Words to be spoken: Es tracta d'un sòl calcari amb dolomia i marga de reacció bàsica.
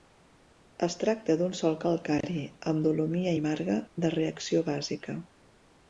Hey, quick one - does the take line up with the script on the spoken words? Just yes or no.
yes